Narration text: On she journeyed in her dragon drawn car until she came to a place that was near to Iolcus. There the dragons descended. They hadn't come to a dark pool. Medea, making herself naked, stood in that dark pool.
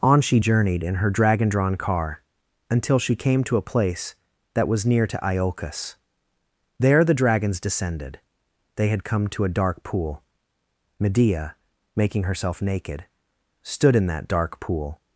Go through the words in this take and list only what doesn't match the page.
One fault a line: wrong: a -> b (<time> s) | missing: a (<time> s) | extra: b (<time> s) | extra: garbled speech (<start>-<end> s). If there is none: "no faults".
wrong: hadn't -> had (8.9 s)